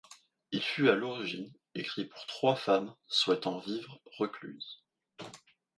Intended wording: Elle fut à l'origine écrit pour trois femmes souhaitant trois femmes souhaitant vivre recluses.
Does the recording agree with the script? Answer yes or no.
no